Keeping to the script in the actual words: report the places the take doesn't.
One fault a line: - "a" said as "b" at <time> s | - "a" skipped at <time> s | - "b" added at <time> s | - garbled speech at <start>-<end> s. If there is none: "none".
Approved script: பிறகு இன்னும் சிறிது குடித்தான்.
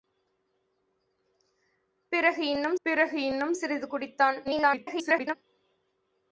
- "பிறகு இன்னும்" added at 2.8 s
- garbled speech at 4.4-5.3 s